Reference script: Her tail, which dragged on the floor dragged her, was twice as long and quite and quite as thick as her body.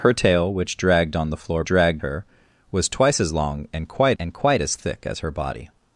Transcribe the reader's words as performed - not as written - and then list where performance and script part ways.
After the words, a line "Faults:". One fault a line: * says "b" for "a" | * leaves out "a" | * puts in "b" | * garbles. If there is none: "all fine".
Her tail, which dragged on the floor dragged her, was twice as long and quite and quite as thick as her body.
Faults:
all fine